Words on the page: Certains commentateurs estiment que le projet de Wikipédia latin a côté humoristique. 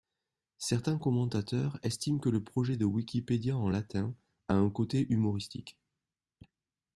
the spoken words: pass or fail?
fail